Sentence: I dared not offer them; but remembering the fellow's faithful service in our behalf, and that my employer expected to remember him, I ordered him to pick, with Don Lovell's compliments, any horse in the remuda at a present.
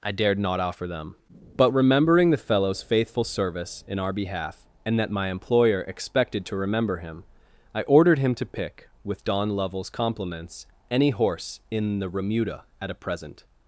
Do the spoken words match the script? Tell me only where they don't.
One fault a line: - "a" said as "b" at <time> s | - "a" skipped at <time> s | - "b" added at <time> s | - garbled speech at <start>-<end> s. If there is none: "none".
none